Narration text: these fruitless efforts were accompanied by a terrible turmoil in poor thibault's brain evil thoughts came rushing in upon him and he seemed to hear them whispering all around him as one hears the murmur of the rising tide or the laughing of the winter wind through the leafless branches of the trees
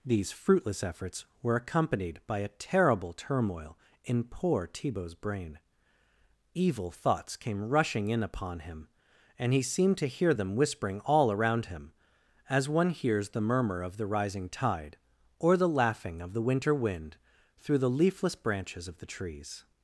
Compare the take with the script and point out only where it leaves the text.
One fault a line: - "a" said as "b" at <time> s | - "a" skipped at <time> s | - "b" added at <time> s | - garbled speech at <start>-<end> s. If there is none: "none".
none